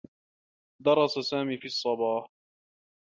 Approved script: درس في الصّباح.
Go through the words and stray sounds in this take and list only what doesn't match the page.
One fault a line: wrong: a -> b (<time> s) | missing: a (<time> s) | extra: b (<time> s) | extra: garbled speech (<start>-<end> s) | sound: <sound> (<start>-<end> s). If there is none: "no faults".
extra: سامي (1.2 s)